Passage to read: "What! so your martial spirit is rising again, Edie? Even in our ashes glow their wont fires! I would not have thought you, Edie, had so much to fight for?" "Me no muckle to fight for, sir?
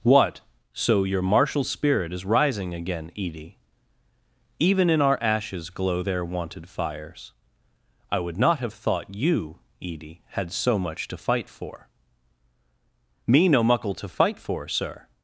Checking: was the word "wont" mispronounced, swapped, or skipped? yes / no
yes